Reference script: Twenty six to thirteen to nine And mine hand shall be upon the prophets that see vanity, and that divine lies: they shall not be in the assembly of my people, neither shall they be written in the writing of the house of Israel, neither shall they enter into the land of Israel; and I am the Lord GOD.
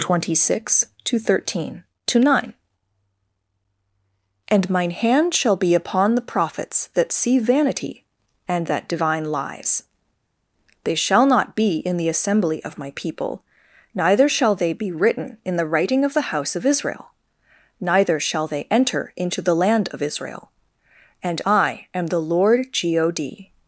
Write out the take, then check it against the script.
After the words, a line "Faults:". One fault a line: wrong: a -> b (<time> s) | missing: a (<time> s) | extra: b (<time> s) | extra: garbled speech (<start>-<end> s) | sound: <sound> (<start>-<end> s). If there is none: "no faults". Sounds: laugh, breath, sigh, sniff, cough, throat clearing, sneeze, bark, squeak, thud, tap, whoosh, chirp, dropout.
Twenty six to thirteen to nine And mine hand shall be upon the prophets that see vanity, and that divine lies: they shall not be in the assembly of my people, neither shall they be written in the writing of the house of Israel, neither shall they enter into the land of Israel; and I am the Lord GOD.
Faults:
no faults